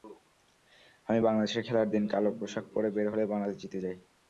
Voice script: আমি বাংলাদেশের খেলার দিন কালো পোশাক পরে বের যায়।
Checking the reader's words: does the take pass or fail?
fail